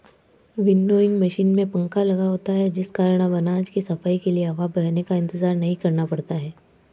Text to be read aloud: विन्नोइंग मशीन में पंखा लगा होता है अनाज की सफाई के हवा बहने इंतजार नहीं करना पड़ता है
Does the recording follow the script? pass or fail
fail